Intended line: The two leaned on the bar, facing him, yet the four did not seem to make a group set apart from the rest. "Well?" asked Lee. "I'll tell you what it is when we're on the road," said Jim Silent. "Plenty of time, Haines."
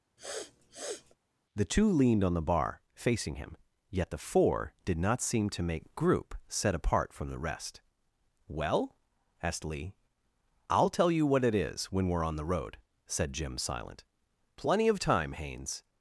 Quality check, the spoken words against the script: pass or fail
fail